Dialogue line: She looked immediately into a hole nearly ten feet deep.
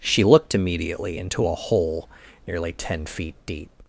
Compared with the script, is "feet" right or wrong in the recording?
right